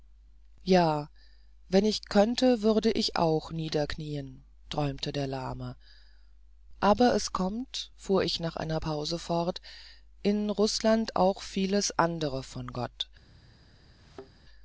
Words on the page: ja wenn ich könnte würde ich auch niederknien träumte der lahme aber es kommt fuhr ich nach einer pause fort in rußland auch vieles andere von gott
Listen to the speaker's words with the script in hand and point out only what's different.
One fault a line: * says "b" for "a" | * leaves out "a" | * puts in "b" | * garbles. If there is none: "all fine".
all fine